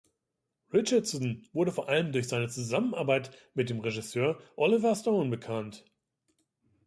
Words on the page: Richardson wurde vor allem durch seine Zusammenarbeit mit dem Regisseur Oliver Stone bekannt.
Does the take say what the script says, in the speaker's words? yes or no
yes